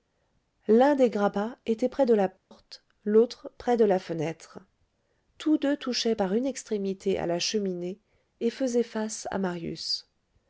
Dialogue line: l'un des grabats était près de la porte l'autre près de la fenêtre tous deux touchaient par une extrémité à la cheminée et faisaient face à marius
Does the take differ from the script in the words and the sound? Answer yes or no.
yes